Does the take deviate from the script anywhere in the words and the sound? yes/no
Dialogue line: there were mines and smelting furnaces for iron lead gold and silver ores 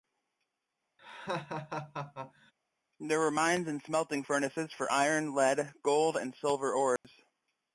yes